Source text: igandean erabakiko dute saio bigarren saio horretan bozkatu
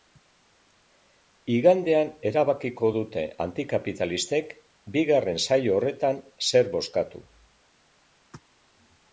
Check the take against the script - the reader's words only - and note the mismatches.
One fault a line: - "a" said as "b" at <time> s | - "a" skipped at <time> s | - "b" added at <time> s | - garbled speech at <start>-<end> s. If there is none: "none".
- "saio" said as "antikapitalistek" at 3.5 s
- "zer" added at 6.5 s